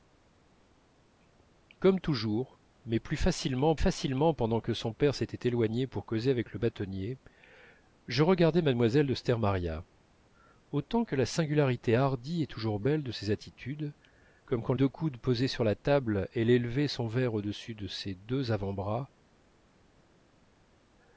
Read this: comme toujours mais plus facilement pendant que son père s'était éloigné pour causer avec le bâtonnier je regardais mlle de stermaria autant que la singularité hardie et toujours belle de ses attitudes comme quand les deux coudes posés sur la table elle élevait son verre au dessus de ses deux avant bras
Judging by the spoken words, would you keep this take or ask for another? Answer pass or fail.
fail